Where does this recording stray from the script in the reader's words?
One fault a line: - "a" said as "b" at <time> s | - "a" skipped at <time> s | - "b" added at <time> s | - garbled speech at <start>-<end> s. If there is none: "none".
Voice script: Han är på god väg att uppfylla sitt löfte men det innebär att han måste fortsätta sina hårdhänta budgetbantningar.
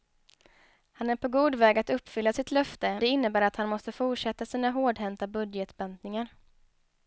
- "men" skipped at 3.0 s